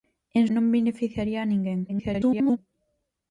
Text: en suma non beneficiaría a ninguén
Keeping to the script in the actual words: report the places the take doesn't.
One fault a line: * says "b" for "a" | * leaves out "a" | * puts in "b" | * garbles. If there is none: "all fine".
* leaves out "suma"
* garbles